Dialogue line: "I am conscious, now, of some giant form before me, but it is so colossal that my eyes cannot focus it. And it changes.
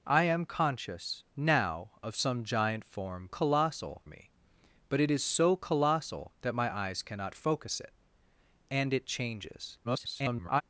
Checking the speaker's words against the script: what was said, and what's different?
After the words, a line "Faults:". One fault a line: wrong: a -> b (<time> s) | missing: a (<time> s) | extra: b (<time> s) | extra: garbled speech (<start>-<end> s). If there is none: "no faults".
"I am conscious, now, of some giant form colossal me, but it is so colossal that my eyes cannot focus it. And it changes. [garbled]
Faults:
wrong: before -> colossal (3.3 s)
extra: garbled speech (9.8-10.6 s)